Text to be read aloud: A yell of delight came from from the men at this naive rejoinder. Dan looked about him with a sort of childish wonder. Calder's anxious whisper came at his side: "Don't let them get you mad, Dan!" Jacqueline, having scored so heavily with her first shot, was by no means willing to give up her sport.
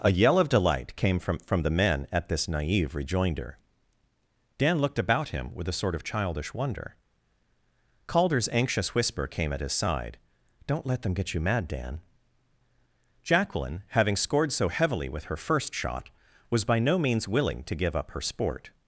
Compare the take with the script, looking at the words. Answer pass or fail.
pass